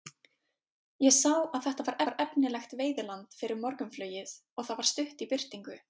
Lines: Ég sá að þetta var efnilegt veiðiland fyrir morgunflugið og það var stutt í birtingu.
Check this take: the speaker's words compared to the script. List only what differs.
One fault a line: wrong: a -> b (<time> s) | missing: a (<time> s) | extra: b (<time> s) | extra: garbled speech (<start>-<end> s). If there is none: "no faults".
extra: var (2.1 s)